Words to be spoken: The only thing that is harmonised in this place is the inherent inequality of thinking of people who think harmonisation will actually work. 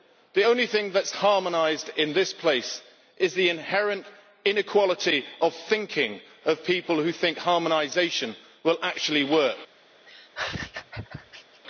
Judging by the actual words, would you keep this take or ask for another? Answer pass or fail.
pass